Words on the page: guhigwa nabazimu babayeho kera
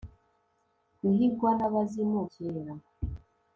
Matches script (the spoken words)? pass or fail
fail